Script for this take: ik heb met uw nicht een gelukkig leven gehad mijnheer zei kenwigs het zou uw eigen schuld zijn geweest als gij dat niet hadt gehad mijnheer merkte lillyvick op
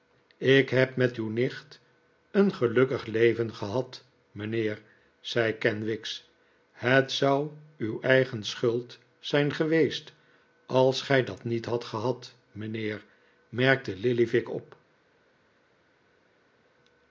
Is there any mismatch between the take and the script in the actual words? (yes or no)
no